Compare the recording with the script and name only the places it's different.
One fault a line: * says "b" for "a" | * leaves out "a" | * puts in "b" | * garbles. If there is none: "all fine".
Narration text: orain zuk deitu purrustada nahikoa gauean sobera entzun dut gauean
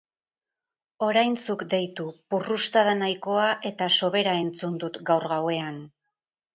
* says "eta" for "gauean"
* puts in "gaur"